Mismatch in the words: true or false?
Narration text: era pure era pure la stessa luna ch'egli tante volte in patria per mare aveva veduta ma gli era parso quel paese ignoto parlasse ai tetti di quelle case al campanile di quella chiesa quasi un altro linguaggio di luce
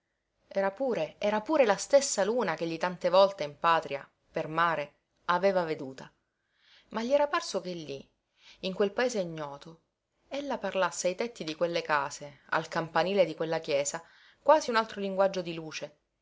true